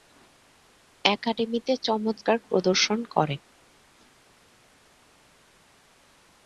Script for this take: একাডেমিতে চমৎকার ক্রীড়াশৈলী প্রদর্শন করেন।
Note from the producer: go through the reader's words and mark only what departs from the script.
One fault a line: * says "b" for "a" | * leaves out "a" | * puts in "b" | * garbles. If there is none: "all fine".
* leaves out "ক্রীড়াশৈলী"